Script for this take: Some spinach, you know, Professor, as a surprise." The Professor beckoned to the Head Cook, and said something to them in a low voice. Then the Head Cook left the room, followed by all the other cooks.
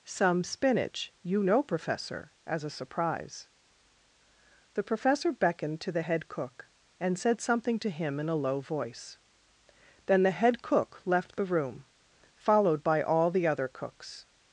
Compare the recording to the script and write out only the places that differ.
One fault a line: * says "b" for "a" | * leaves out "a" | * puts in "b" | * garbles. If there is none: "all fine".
* says "him" for "them"